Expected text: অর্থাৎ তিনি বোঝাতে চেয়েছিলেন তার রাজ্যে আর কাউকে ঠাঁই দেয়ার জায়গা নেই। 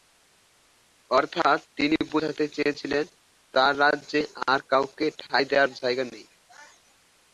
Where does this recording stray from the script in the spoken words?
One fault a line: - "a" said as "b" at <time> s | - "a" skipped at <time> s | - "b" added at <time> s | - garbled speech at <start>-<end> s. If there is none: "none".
none